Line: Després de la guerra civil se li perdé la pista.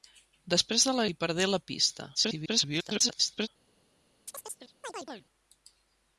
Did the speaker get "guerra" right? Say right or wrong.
wrong